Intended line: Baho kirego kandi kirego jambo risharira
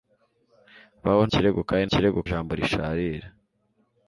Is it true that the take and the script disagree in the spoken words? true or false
false